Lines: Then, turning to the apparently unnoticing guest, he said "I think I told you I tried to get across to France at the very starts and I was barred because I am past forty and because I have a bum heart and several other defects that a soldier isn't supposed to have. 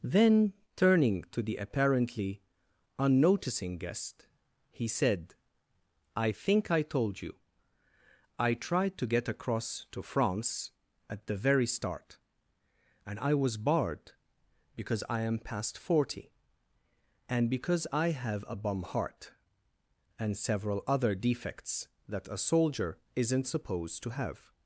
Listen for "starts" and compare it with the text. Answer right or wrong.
wrong